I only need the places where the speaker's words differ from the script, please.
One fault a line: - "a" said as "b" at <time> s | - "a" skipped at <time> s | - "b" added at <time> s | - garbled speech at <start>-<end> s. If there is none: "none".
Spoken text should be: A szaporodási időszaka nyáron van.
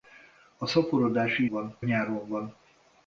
- "időszaka" said as "van" at 1.5 s